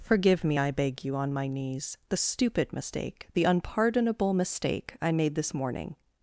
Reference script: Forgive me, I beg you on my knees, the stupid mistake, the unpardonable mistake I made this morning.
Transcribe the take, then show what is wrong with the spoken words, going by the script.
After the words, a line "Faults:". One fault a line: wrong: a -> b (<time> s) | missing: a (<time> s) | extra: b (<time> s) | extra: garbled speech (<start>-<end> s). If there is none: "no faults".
Forgive me, I beg you on my knees, the stupid mistake, the unpardonable mistake I made this morning.
Faults:
no faults